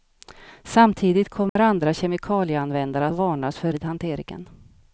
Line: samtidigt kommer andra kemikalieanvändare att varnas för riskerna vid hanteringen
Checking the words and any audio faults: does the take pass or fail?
fail